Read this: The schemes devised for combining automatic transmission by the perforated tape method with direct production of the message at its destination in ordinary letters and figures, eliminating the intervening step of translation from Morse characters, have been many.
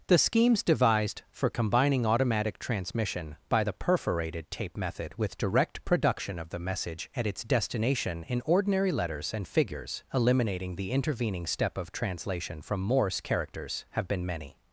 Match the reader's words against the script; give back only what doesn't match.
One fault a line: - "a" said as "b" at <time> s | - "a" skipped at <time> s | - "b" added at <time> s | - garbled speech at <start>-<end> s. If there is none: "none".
none